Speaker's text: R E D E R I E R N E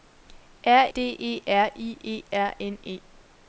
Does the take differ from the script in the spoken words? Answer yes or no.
yes